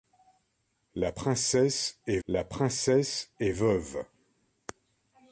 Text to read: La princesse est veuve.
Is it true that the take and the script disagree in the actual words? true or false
true